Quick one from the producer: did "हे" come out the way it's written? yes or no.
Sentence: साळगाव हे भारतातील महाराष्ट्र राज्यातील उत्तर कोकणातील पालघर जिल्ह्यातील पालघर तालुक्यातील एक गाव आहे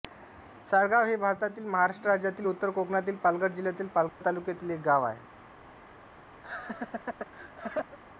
yes